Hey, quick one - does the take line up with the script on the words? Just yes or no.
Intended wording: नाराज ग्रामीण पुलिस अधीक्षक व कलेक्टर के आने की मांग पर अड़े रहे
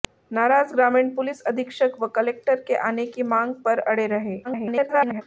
no